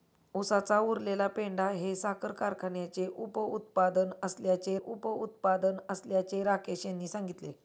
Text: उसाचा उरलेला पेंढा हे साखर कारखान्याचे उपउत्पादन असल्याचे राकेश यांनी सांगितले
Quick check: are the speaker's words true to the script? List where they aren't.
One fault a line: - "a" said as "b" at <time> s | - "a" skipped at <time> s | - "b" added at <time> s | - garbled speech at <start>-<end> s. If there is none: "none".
- "उपउत्पादन असल्याचे" added at 4.8 s